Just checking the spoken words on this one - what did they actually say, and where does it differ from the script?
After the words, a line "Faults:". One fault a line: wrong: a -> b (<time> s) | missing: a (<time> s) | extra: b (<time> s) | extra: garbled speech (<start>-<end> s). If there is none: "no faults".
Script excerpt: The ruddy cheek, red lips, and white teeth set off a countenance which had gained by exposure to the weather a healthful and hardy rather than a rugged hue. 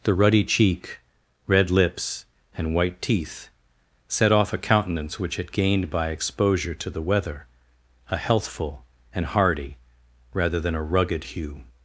The ruddy cheek, red lips, and white teeth set off a countenance which had gained by exposure to the weather a healthful and hardy rather than a rugged hue.
Faults:
no faults